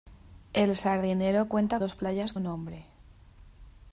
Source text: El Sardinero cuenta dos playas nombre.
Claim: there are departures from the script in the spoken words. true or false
false